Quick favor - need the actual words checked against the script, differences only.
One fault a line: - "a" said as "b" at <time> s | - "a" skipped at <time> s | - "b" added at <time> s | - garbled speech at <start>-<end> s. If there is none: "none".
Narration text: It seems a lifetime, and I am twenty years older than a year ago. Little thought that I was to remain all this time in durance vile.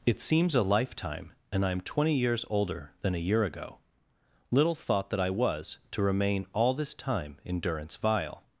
none